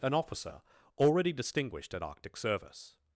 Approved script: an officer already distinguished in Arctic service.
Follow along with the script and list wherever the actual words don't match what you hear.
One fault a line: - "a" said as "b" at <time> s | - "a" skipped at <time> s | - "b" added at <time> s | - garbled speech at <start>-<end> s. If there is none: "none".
- "in" said as "at" at 1.9 s